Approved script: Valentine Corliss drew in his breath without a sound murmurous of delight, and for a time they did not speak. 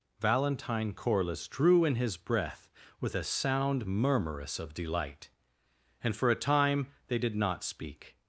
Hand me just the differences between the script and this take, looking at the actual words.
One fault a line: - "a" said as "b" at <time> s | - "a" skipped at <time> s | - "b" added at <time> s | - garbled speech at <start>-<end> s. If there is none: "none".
- "without" said as "with" at 3.0 s